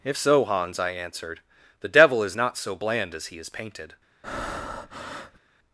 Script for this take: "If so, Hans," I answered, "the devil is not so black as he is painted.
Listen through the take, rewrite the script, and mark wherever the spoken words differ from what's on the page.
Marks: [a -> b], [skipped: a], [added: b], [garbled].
"If so, Hans," I answered, "the devil is not so [black -> bland] as he is painted.